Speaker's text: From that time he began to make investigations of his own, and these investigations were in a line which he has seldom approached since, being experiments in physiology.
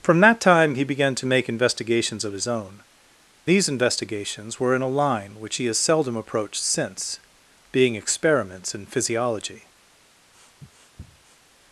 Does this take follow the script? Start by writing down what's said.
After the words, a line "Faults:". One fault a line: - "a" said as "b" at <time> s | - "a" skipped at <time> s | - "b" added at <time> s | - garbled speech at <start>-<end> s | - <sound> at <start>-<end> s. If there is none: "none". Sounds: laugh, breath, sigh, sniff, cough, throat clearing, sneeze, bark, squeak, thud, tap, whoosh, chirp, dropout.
From that time he began to make investigations of his own, these investigations were in a line which he has seldom approached since, being experiments in physiology.
Faults:
- "and" skipped at 2.8 s
- sniff at 10.3-11.4 s